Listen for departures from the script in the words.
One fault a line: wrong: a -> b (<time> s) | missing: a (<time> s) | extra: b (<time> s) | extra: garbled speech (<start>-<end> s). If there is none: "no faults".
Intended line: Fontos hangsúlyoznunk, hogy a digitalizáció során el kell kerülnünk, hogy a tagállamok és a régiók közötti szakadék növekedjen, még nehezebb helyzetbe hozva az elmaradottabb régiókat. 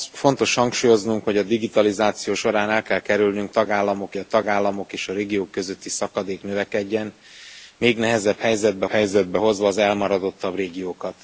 wrong: hogy -> tagállamok (3.5 s)
extra: helyzetbe (8.9 s)